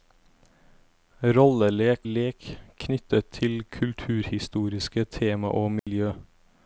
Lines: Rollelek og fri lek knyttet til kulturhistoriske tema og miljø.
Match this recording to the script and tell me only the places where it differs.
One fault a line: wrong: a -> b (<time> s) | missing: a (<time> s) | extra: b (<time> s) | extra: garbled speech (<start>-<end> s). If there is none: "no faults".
missing: og fri (2.1 s)